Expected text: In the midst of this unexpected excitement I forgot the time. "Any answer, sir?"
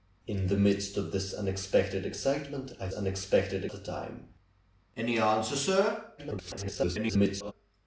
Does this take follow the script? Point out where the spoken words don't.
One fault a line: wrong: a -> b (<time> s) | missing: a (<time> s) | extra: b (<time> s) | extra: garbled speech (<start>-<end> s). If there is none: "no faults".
wrong: forgot -> unexpected (2.9 s)
extra: garbled speech (6.2-7.5 s)